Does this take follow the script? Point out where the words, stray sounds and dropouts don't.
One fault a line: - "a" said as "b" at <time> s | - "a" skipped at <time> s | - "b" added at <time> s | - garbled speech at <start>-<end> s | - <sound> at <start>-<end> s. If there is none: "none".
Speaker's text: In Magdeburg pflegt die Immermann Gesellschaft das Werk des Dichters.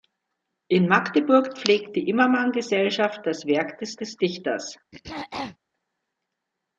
- "des" added at 4.0 s
- throat clearing at 4.9-5.6 s